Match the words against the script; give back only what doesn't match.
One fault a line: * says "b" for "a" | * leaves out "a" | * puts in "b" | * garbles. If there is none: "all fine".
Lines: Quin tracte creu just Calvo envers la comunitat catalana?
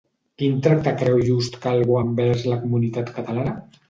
all fine